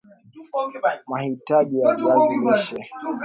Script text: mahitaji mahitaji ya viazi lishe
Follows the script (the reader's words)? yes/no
no